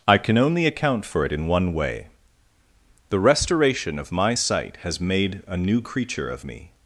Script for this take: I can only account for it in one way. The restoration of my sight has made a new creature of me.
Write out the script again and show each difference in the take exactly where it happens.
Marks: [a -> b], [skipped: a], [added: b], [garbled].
I can only account for it in one way. The restoration of my sight has made a new creature of me.